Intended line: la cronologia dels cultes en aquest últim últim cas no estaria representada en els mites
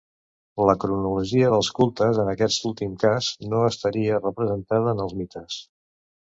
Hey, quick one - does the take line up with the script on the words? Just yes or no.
no